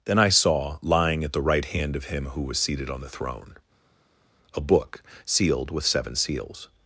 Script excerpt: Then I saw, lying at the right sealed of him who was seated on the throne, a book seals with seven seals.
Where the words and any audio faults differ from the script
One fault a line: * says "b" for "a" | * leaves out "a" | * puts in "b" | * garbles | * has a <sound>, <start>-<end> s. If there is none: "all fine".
* says "hand" for "sealed"
* says "sealed" for "seals"